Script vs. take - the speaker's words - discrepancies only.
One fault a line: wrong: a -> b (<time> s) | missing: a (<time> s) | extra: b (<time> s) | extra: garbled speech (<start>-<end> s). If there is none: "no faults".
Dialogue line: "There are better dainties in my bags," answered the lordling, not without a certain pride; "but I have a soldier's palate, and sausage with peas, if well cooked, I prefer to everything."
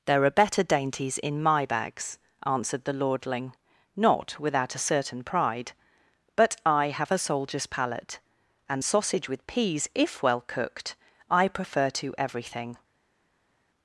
no faults